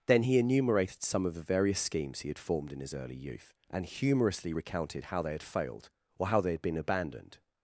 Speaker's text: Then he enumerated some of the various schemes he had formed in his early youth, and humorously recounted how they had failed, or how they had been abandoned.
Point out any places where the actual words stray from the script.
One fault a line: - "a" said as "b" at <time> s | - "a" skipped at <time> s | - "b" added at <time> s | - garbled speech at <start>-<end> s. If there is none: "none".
none